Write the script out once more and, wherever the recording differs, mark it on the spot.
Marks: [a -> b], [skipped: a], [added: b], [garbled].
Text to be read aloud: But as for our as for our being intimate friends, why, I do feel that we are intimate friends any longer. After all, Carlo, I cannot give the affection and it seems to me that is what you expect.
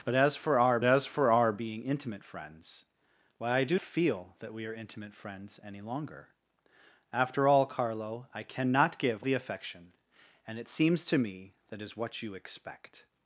But as for our as for our being intimate friends, why, I do feel that we are intimate friends any longer. After all, Carlo, I cannot give the affection and it seems to me that is what you expect.